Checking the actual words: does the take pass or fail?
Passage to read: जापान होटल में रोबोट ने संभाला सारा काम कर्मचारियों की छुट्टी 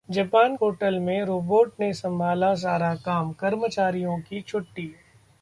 pass